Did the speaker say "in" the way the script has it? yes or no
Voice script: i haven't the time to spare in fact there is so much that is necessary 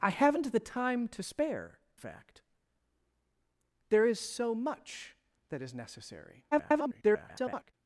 no